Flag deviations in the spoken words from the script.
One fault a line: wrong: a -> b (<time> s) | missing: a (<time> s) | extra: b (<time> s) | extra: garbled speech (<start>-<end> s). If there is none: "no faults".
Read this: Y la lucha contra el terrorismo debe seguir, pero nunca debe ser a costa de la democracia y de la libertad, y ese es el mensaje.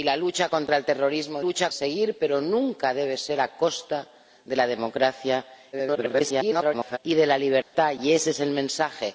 wrong: debe -> lucha (1.4 s)
extra: garbled speech (5.7-7.0 s)